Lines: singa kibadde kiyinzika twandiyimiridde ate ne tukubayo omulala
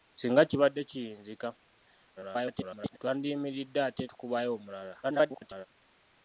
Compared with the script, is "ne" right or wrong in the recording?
wrong